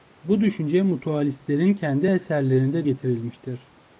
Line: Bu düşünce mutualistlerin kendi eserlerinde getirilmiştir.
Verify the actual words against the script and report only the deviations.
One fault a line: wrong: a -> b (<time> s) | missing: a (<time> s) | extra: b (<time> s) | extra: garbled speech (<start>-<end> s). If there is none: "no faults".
no faults